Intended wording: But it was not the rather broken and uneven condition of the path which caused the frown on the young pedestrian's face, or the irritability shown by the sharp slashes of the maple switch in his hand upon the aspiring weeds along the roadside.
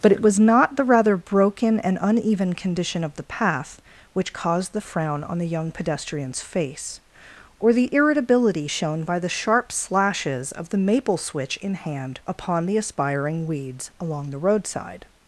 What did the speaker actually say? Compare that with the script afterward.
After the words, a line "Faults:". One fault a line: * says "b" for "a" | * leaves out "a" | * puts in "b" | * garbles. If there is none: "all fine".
But it was not the rather broken and uneven condition of the path which caused the frown on the young pedestrian's face, or the irritability shown by the sharp slashes of the maple switch in hand upon the aspiring weeds along the roadside.
Faults:
* leaves out "his"